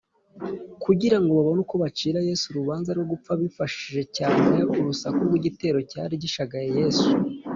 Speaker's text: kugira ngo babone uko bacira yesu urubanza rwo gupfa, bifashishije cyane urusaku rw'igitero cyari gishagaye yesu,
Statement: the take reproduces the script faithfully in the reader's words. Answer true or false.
true